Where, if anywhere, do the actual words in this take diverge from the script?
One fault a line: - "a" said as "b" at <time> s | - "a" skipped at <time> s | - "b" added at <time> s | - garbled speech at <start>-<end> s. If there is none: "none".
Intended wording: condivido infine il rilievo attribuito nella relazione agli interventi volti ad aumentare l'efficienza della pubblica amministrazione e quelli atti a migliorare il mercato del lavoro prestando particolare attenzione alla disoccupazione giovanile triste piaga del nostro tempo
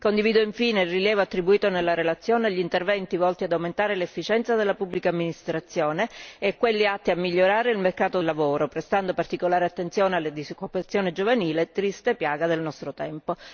- "del" skipped at 8.2 s